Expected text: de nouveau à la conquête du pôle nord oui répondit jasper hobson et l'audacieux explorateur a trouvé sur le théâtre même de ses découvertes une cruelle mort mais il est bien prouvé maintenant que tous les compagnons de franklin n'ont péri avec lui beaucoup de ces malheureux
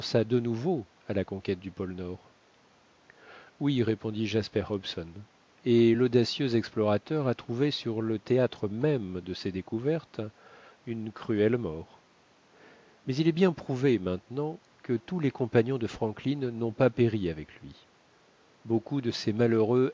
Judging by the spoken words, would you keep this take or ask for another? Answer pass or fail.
fail